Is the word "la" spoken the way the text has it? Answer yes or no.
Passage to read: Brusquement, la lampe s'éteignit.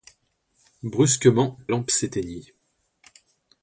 no